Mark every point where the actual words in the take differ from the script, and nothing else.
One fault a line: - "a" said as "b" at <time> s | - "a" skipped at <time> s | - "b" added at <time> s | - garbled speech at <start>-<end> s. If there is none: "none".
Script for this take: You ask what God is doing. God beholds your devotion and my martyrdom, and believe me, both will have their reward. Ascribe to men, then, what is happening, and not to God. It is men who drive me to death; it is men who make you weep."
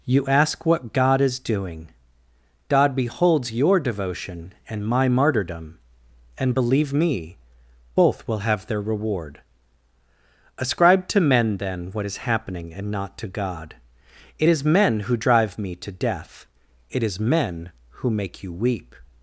none